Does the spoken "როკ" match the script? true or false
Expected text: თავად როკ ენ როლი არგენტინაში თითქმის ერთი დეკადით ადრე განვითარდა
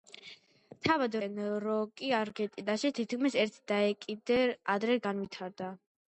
false